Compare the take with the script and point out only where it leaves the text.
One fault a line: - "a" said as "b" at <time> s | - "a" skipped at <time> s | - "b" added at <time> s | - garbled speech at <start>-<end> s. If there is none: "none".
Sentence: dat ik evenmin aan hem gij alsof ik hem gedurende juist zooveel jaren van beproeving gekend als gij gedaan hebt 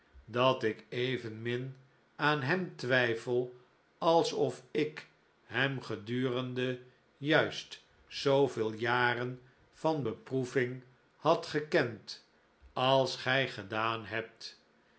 - "gij" said as "twijfel" at 2.8 s
- "had" added at 11.2 s